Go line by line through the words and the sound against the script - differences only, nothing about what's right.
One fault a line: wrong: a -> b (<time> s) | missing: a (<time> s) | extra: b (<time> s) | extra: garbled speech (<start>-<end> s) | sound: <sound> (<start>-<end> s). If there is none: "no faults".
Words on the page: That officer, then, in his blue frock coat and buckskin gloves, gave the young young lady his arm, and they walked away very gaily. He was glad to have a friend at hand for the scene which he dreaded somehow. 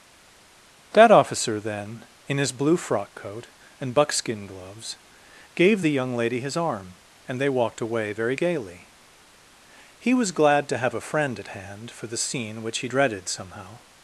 missing: young (6.2 s)